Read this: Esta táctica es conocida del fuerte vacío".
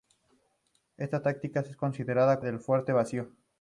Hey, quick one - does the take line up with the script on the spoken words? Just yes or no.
yes